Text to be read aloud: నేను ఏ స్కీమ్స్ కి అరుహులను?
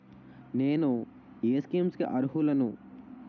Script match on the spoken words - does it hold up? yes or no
yes